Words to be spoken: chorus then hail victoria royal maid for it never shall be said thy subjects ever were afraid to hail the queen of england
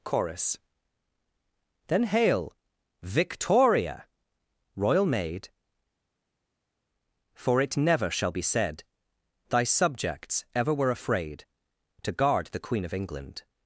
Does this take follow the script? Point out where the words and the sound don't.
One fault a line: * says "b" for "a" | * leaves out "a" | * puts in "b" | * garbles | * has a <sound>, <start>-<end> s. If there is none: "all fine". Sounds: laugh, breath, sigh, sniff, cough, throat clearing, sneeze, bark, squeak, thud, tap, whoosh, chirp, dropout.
* says "guard" for "hail"